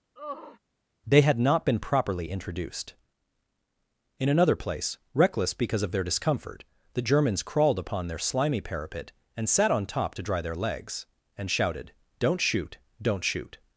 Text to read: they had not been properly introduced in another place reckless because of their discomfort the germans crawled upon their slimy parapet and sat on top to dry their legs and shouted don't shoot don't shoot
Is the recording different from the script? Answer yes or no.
no